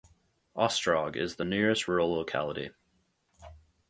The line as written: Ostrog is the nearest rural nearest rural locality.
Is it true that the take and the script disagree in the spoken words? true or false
true